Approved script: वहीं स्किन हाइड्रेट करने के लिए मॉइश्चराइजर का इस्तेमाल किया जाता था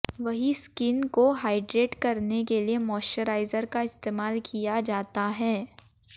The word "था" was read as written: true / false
false